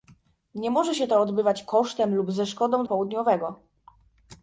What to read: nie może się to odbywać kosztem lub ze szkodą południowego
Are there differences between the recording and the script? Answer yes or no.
no